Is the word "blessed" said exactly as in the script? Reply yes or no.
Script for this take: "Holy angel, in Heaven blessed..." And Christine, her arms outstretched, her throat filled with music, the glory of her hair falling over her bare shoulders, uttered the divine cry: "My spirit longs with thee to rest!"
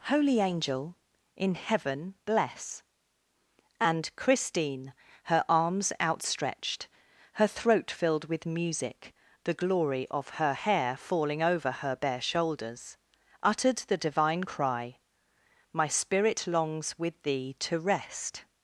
no